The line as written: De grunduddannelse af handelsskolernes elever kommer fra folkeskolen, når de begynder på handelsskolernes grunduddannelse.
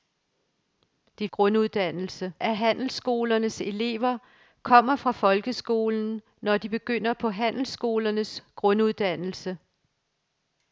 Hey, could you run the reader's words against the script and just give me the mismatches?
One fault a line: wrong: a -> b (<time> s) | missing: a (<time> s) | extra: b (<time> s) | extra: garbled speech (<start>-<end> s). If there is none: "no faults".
no faults